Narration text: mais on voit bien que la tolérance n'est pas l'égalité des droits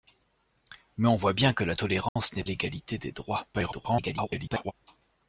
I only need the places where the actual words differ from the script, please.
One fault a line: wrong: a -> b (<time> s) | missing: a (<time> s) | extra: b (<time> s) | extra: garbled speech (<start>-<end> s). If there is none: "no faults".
missing: pas (2.4 s)
extra: garbled speech (3.5-4.7 s)